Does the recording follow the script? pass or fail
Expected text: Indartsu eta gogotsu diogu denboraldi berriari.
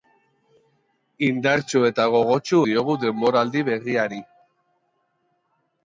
pass